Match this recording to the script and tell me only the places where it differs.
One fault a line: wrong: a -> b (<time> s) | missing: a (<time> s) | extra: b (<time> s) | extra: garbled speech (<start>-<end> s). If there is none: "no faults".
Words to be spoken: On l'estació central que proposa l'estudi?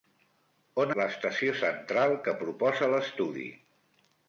no faults